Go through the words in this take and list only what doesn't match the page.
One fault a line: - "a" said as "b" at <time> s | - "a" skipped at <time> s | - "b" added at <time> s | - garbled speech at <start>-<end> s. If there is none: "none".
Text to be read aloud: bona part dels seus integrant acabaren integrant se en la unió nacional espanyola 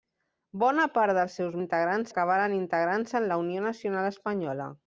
none